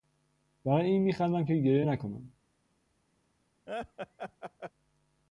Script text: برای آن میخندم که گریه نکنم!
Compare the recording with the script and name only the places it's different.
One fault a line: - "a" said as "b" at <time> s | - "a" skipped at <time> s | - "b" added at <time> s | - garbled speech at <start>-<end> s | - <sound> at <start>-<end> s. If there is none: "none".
- "آن" said as "این" at 0.8 s
- laugh at 3.7-4.7 s